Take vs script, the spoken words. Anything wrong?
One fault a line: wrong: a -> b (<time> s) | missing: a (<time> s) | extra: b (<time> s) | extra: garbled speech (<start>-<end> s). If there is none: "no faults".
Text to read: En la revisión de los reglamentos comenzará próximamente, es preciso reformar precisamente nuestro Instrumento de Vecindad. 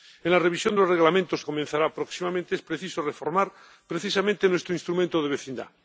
no faults